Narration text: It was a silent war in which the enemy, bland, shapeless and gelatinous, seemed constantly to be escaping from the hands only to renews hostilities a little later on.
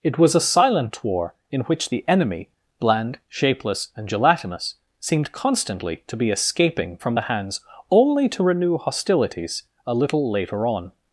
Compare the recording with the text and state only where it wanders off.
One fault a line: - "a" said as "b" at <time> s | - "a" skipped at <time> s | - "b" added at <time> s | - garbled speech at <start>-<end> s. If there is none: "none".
- "renews" said as "renew" at 8.4 s